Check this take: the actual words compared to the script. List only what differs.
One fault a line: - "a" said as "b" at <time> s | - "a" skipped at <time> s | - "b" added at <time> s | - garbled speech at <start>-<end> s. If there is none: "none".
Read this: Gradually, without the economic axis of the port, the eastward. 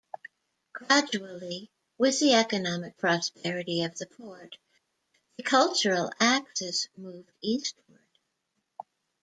- "without" said as "with" at 2.0 s
- "axis" said as "prosperity" at 3.0 s
- "cultural axis moved" added at 5.4 s